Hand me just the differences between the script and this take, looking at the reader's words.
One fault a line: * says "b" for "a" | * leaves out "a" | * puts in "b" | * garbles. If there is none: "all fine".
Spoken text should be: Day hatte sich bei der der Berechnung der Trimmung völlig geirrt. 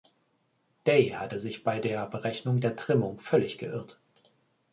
* leaves out "der"